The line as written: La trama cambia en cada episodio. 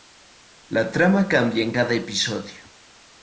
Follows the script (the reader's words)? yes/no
yes